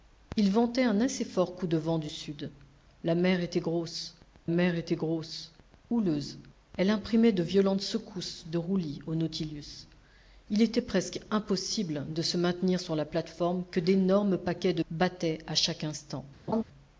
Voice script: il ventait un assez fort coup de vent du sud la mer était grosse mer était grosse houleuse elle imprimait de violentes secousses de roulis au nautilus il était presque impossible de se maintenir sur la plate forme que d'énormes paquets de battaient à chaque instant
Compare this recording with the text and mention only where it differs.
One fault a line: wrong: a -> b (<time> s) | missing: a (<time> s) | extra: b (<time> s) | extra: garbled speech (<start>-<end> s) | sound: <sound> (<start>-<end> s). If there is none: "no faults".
sound: laugh (16.5-16.6 s)